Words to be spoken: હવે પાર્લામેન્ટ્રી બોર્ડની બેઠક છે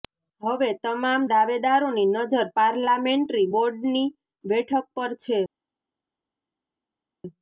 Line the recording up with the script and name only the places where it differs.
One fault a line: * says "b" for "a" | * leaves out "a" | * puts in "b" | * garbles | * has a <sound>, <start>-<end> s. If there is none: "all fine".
* puts in "તમામ દાવેદારોની નજર"
* puts in "પર"